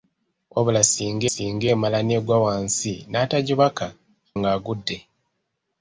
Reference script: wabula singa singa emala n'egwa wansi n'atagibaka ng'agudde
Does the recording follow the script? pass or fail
pass